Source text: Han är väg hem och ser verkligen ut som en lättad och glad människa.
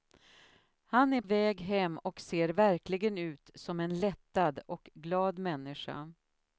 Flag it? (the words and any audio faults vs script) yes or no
no